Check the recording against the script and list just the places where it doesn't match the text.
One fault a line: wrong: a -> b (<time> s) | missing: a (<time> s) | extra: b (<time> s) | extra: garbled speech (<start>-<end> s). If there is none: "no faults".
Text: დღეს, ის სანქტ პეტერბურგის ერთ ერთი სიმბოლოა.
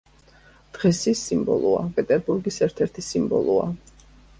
wrong: სანქტ -> სიმბოლოა (1.3 s)